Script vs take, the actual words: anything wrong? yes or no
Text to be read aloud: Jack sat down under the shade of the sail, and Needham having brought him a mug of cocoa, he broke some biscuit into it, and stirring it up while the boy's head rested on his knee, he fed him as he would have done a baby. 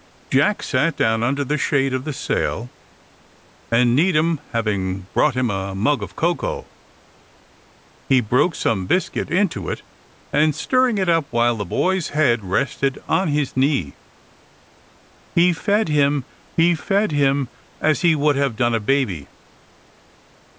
yes